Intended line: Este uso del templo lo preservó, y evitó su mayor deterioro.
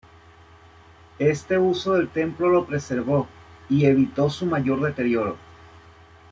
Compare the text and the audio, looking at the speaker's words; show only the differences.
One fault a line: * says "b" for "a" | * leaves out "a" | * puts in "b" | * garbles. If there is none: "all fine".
all fine